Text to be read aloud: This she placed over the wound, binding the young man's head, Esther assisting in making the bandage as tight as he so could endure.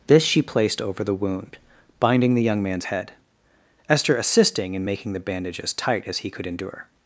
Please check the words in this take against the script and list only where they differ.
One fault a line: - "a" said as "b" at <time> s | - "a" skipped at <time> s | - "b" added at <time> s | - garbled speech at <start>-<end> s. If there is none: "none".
- "so" skipped at 6.3 s